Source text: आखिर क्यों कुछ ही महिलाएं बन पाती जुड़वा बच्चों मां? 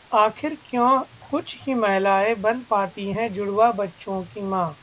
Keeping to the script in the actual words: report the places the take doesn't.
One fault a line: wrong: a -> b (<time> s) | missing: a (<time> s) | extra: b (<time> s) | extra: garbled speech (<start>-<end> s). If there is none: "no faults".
extra: हैं (3.1 s)
extra: की (4.2 s)